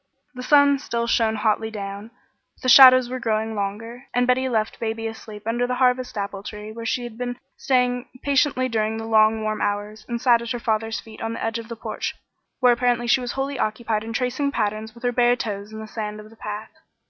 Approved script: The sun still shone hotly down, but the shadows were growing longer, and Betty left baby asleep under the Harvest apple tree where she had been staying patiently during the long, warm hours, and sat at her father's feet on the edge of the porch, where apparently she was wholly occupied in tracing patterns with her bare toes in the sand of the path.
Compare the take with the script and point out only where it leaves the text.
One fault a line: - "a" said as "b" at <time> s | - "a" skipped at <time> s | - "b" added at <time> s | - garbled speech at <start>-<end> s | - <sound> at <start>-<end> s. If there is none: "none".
none